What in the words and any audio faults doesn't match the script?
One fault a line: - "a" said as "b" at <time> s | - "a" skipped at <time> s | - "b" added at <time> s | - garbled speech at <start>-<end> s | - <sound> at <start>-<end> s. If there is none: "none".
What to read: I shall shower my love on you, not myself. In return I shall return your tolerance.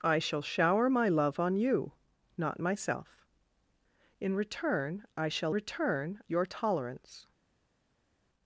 none